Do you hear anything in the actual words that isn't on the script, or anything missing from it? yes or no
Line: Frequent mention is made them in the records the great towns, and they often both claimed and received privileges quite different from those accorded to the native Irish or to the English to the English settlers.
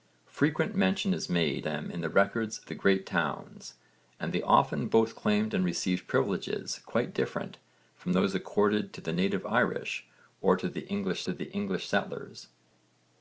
no